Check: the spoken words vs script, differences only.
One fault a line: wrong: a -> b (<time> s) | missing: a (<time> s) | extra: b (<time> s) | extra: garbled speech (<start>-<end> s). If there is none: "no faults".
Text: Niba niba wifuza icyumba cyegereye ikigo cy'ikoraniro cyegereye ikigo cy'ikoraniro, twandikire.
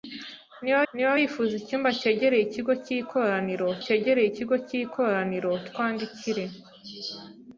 no faults